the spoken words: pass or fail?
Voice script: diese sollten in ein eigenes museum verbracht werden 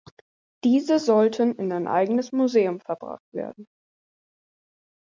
pass